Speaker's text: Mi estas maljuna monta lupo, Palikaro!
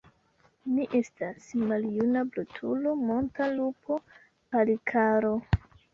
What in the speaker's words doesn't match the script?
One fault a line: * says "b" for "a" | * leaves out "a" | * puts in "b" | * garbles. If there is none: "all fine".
* puts in "brutulo"